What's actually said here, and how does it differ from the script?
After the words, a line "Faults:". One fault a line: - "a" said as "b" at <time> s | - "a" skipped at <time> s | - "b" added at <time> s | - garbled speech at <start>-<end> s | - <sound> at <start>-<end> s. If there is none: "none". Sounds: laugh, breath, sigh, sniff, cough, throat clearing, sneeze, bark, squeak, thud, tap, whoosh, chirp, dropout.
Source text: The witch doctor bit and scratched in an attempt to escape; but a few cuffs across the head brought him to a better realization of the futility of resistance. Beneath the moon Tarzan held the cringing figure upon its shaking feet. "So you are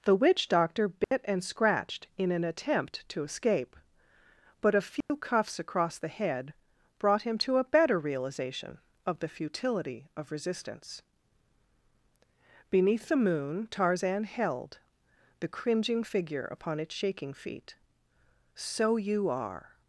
The witch doctor bit and scratched in an attempt to escape; but a few cuffs across the head brought him to a better realization of the futility of resistance. Beneath the moon Tarzan held the cringing figure upon its shaking feet. "So you are
Faults:
- dropout at 1.0-1.1 s
- dropout at 5.0-5.1 s